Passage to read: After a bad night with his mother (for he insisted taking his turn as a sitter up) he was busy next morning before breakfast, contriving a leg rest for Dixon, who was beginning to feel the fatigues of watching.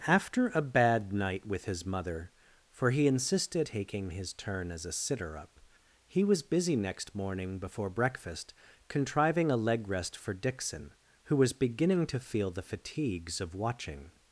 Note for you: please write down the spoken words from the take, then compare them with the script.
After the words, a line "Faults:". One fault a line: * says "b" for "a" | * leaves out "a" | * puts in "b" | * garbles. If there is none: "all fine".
After a bad night with his mother (for he insisted taking his turn as a sitter up) he was busy next morning before breakfast, contriving a leg rest for Dixon, who was beginning to feel the fatigues of watching.
Faults:
all fine